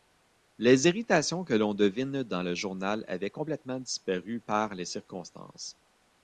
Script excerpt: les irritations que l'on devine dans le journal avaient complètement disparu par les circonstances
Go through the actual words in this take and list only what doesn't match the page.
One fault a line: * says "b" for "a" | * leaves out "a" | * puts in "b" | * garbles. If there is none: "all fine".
all fine